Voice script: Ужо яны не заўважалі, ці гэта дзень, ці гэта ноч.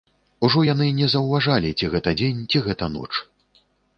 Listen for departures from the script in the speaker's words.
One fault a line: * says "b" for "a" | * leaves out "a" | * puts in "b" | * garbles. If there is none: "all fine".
all fine